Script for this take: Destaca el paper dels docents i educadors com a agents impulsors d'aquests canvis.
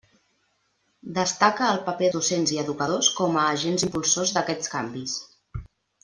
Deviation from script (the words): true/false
true